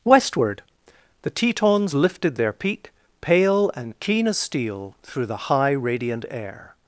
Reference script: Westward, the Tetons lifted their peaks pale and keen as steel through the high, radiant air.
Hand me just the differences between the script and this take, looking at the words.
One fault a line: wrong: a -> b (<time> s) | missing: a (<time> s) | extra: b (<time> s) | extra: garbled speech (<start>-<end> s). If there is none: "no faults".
wrong: peaks -> peak (2.5 s)